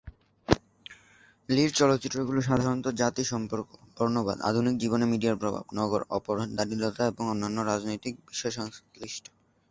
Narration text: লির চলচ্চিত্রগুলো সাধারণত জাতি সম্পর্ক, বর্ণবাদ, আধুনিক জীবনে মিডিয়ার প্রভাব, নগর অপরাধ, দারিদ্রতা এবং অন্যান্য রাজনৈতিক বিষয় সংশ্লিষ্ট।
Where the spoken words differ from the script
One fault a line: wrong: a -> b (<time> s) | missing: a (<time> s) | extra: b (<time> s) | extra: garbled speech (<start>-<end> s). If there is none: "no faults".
no faults